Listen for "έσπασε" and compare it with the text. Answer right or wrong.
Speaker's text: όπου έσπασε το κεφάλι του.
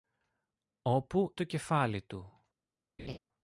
wrong